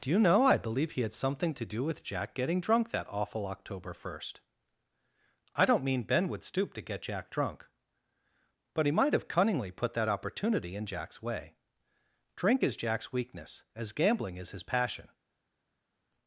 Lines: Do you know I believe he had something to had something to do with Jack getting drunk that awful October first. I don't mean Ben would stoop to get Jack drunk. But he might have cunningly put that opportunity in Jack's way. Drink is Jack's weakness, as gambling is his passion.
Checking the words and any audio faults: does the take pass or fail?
fail